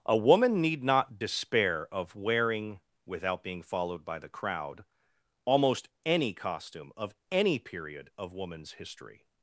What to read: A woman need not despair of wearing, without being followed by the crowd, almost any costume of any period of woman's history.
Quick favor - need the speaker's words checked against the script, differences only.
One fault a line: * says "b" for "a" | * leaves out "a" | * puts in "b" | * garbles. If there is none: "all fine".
all fine